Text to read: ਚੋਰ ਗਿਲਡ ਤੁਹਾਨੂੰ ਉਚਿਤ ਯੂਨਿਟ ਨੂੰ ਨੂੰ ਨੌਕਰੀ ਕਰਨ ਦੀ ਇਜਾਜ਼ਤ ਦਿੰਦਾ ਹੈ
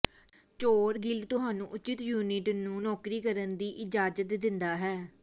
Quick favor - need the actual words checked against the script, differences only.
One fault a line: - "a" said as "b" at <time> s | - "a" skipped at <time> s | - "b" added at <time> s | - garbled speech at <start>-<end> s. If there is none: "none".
- "ਨੂੰ" skipped at 2.8 s